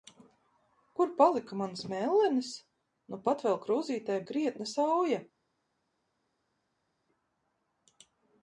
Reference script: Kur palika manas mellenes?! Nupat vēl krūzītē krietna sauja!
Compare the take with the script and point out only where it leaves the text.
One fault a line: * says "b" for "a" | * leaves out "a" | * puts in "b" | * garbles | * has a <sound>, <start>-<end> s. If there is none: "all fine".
all fine